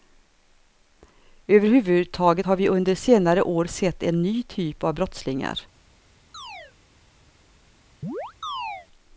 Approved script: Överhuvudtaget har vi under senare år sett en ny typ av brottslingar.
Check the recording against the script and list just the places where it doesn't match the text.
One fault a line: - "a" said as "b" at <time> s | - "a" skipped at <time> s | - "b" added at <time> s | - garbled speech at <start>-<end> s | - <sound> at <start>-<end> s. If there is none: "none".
- chirp at 6.3-6.7 s
- chirp at 8.0-8.9 s